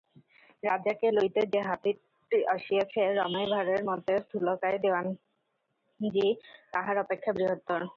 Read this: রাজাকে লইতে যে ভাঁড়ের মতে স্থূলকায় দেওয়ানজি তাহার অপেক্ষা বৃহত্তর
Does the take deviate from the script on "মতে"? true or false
false